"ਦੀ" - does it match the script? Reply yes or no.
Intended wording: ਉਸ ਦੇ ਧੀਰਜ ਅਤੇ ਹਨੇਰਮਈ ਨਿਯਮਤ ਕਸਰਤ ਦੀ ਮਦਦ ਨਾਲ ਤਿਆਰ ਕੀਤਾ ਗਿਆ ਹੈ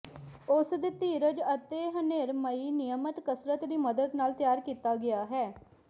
yes